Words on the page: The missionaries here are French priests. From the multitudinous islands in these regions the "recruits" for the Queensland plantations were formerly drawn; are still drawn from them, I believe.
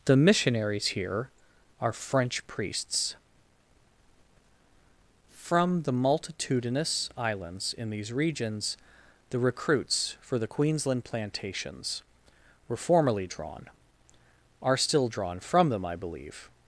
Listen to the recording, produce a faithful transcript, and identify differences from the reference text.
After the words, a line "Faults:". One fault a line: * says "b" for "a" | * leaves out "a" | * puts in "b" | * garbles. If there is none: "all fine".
The missionaries here are French priests. From the multitudinous islands in these regions the "recruits" for the Queensland plantations were formerly drawn; are still drawn from them, I believe.
Faults:
all fine